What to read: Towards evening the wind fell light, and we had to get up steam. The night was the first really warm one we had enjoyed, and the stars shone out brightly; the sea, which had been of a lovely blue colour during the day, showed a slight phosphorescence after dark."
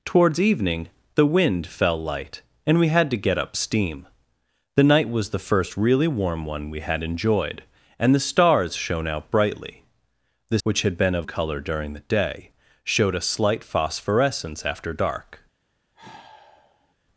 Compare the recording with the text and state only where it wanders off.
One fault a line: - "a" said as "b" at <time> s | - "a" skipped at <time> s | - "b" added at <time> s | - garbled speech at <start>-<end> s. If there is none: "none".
- "sea" skipped at 10.6 s
- "a lovely blue" skipped at 11.3 s